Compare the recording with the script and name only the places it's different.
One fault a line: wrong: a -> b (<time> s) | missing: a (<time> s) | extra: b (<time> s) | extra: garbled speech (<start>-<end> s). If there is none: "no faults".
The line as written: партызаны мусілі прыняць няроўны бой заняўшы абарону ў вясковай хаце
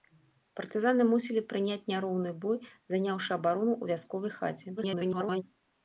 extra: garbled speech (4.8-5.4 s)